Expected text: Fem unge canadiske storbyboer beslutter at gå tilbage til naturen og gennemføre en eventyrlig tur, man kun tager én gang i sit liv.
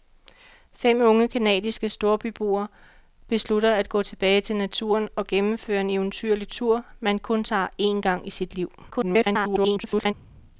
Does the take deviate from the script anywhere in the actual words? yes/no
yes